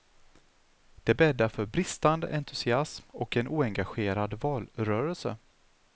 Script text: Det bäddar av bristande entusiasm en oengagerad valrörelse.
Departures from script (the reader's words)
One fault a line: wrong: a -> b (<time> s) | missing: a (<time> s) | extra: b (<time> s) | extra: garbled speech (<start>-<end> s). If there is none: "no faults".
wrong: av -> för (1.5 s)
extra: och (3.1 s)